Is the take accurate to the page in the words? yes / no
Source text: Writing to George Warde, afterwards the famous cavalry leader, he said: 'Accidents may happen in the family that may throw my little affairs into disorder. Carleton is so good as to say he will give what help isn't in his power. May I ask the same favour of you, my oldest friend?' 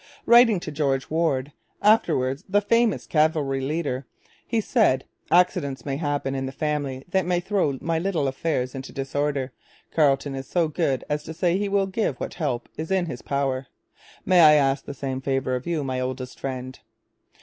no